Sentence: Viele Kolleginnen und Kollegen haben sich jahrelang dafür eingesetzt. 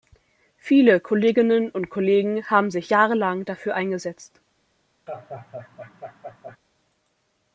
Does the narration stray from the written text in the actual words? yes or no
no